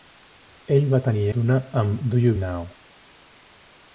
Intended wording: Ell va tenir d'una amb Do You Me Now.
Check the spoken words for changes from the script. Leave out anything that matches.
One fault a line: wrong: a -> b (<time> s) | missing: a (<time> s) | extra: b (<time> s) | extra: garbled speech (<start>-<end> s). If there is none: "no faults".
no faults